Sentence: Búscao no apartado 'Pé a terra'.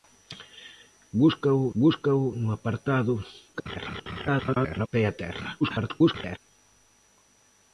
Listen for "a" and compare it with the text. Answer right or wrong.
right